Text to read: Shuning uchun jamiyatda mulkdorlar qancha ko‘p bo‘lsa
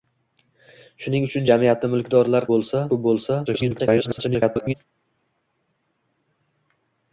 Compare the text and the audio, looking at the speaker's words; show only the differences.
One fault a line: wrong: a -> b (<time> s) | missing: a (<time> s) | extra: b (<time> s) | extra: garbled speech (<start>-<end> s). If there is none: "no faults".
wrong: qancha -> bo‘lsa (2.5 s)
extra: garbled speech (3.5-4.7 s)